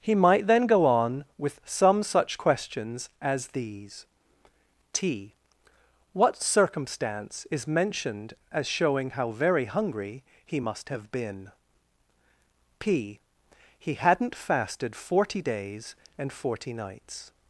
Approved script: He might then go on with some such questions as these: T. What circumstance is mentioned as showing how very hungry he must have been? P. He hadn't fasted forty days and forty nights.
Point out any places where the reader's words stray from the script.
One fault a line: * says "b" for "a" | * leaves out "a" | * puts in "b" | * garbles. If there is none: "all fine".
all fine